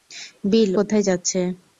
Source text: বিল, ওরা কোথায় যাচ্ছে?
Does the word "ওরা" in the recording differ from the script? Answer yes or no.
yes